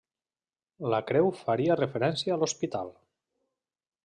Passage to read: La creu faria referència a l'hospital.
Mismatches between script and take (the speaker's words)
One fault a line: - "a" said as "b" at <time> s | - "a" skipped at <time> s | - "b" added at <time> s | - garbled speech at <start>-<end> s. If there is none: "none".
none